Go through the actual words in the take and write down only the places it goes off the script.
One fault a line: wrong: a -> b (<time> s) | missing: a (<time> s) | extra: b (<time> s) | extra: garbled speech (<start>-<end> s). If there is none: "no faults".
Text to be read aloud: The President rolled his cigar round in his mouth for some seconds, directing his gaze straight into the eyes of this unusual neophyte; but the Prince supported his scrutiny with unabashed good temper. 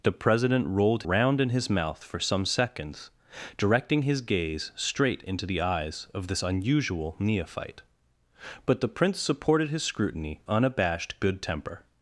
missing: his cigar (1.0 s)
missing: with (10.4 s)